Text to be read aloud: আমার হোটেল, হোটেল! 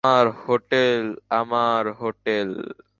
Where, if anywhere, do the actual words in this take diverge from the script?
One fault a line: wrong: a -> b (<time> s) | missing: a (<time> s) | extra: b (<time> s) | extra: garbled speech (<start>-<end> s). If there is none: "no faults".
extra: আমার (1.3 s)